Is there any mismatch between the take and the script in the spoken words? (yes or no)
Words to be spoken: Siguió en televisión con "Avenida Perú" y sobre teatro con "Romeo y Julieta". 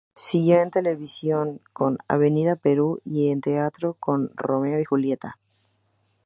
yes